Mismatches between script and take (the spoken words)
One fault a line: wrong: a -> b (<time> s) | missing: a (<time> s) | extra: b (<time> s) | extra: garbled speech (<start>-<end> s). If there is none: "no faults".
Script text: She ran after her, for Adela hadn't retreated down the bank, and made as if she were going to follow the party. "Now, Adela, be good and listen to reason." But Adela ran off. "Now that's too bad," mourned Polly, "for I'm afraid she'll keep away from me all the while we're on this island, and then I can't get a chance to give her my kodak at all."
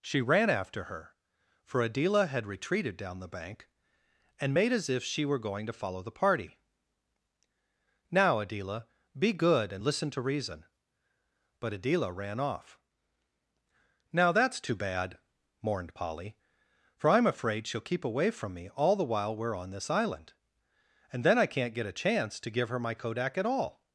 wrong: hadn't -> had (2.2 s)